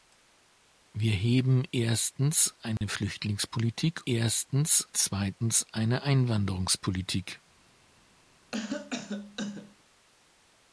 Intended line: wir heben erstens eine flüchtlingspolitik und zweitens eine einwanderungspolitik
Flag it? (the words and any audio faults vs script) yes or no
yes